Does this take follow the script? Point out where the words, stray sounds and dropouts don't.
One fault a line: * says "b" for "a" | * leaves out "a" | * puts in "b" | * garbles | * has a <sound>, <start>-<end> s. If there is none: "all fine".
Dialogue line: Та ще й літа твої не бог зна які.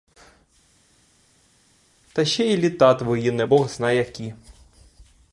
all fine